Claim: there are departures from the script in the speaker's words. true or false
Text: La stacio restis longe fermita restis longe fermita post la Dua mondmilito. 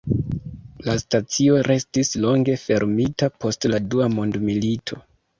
true